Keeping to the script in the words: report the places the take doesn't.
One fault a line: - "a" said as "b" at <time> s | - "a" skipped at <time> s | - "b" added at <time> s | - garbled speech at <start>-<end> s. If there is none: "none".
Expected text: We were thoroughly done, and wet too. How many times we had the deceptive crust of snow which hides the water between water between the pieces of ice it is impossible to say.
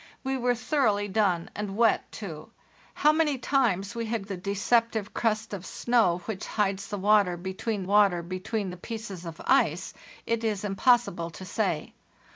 none